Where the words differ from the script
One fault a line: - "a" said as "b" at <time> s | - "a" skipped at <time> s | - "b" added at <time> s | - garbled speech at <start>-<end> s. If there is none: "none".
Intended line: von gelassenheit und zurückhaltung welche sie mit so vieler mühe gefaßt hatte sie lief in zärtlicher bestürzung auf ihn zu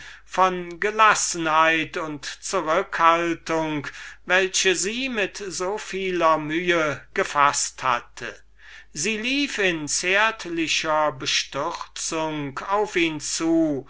none